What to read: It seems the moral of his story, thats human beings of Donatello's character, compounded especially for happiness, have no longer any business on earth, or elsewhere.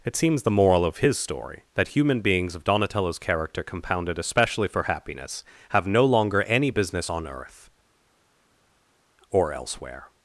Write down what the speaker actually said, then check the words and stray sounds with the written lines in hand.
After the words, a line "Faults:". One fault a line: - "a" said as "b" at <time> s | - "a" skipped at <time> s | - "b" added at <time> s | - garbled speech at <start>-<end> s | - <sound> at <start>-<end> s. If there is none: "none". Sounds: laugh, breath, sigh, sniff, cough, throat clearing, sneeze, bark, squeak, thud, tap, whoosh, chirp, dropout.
It seems the moral of his story, that human beings of Donatello's character, compounded especially for happiness, have no longer any business on earth, or elsewhere.
Faults:
- "thats" said as "that" at 1.8 s